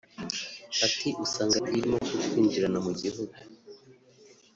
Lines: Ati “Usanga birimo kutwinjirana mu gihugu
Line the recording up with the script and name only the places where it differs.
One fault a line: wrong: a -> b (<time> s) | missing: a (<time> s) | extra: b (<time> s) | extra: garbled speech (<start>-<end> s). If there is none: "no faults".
no faults